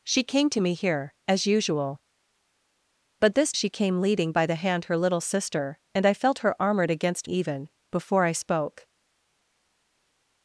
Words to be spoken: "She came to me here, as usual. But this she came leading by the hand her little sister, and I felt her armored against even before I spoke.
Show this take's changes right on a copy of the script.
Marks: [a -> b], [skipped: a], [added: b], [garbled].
"She came to me here, as usual. But this she came leading by the hand her little sister, and I felt her armored against even before I spoke.